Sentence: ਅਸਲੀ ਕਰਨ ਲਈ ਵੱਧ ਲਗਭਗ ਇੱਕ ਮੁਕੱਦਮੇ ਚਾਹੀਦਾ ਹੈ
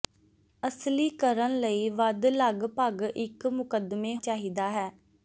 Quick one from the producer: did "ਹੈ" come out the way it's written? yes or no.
yes